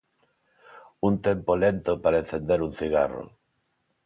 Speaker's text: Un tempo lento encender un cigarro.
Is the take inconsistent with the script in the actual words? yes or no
yes